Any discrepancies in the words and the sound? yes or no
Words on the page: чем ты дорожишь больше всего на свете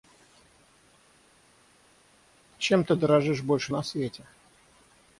yes